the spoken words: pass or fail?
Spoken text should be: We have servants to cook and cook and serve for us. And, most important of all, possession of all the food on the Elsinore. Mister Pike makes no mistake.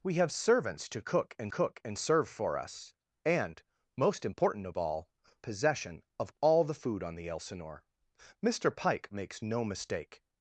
pass